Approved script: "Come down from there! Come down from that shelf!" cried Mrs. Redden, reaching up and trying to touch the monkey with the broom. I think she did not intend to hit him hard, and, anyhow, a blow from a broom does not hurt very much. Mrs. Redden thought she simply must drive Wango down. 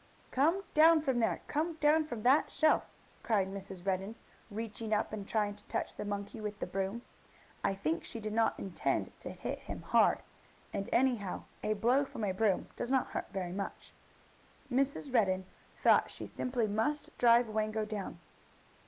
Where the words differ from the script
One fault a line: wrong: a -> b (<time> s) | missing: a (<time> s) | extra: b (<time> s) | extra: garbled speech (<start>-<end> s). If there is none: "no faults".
no faults